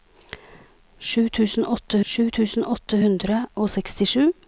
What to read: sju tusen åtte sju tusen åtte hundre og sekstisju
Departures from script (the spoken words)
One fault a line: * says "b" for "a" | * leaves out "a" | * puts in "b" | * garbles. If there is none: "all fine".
all fine